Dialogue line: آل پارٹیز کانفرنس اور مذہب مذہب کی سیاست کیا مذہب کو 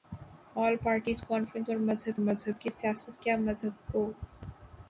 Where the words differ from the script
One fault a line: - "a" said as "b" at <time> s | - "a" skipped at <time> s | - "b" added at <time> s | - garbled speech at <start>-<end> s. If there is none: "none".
none